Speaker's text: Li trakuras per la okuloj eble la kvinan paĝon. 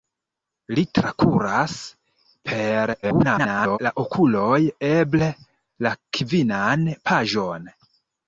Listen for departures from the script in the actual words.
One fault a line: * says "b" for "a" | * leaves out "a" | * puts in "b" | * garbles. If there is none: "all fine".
* garbles